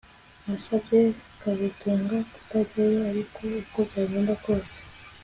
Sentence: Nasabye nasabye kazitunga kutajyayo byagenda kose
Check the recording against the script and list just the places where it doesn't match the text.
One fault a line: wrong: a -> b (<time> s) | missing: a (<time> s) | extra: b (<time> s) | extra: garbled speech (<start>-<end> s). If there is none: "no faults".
missing: nasabye (1.0 s)
extra: ariko uko (3.1 s)